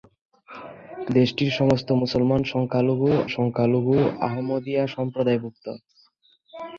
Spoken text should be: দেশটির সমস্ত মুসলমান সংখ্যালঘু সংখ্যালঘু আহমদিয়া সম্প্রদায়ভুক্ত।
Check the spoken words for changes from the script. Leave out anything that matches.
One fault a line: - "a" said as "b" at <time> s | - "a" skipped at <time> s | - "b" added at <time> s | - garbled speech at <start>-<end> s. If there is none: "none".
none